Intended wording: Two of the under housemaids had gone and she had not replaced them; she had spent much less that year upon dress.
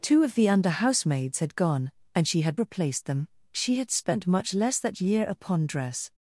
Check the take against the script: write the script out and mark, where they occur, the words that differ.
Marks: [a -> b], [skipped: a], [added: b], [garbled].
Two of the under housemaids had gone and she had [skipped: not] replaced them; she had spent much less that year upon dress.